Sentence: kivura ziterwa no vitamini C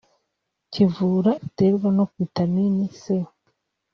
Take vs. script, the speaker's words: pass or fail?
pass